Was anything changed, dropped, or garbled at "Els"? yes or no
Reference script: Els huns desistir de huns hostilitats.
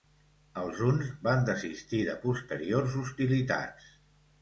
no